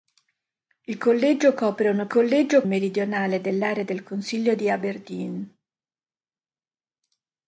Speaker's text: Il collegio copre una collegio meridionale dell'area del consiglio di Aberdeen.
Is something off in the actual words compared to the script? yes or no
no